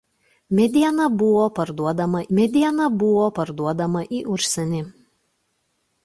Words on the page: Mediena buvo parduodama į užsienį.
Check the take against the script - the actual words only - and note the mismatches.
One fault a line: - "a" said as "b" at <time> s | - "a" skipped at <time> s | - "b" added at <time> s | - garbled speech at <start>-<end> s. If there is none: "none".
- "mediena buvo parduodama" added at 2.4 s